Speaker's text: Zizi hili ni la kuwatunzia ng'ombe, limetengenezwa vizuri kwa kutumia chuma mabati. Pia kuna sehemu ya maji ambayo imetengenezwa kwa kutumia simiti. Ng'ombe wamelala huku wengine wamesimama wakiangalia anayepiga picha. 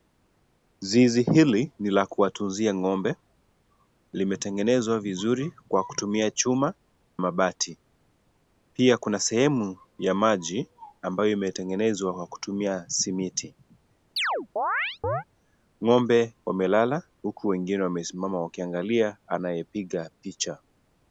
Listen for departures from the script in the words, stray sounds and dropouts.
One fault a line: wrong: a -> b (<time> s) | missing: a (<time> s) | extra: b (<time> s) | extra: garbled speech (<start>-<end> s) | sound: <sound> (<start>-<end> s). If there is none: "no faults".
sound: chirp (14.2-15.2 s)